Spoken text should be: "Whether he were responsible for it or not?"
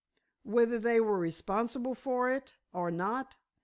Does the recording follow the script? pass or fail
fail